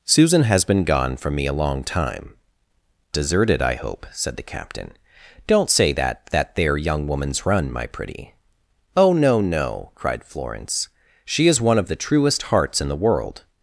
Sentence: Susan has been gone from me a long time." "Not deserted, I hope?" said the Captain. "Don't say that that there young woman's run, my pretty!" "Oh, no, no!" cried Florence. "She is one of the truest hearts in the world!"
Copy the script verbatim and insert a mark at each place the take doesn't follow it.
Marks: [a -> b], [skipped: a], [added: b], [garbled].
Susan has been gone from me a long time." [skipped: "Not] deserted, I hope?" said the Captain. "Don't say that that there young woman's run, my pretty!" "Oh, no, no!" cried Florence. "She is one of the truest hearts in the world!"